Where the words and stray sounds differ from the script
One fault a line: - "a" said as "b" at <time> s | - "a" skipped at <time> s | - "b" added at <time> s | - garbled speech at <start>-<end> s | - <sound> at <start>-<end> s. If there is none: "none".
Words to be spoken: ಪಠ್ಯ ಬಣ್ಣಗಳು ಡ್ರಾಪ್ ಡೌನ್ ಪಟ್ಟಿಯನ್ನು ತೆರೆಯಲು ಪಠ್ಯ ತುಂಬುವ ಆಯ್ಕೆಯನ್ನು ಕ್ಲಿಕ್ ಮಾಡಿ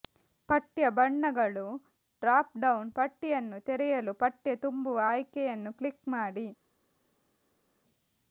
none